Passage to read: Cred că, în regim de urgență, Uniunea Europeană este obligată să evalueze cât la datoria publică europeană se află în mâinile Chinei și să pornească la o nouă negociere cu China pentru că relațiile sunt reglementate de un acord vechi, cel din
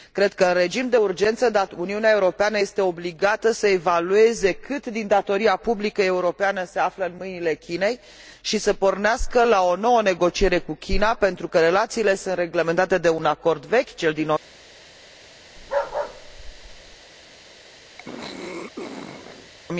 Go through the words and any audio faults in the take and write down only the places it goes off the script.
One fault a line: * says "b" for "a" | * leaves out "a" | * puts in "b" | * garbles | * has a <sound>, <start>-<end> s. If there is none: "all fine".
* says "din" for "la"
* has a bark, 15.6-17.0 s
* has a throat clearing, 18.0-19.5 s